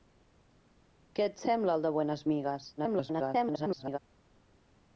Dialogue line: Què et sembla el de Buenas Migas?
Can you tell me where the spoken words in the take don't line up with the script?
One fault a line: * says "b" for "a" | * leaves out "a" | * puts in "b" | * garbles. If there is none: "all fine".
* garbles